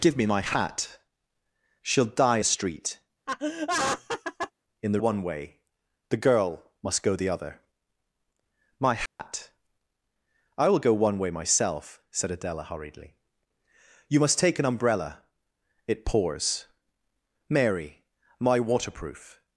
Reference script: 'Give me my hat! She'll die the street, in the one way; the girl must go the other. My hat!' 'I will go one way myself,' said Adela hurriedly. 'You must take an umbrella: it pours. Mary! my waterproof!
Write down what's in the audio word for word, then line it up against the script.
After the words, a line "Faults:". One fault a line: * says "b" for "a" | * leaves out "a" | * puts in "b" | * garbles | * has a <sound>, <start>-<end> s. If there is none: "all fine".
'Give me my hat! She'll die the street, in the one way; the girl must go the other. My hat!' 'I will go one way myself,' said Adela hurriedly. 'You must take an umbrella: it pours. Mary! my waterproof!
Faults:
* has a laugh, 3.3-4.5 s
* has a dropout, 9.1-9.2 s